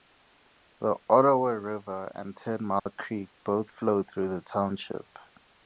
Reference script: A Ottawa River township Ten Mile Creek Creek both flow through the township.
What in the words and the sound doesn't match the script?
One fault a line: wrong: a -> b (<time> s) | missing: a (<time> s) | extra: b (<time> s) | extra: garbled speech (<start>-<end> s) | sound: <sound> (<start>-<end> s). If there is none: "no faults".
wrong: A -> The (0.8 s)
wrong: township -> and (2.1 s)
sound: dropout (2.8-2.9 s)
missing: Creek (3.3 s)